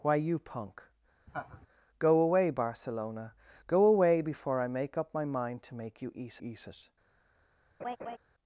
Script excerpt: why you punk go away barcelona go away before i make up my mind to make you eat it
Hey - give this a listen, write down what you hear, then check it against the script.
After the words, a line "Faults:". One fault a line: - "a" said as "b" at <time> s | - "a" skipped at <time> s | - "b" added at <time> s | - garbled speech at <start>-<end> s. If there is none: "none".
why you punk go away barcelona go away before i make up my mind to make you eat eat it
Faults:
- "eat" added at 6.4 s